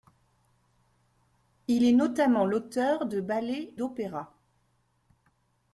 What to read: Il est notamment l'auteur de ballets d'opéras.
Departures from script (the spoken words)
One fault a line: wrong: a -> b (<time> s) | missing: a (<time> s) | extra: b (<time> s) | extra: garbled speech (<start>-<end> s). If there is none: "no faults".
no faults